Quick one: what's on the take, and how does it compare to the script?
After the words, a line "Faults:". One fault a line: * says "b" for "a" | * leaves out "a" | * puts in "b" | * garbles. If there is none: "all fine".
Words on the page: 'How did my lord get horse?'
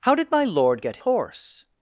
'How did my lord get horse?'
Faults:
all fine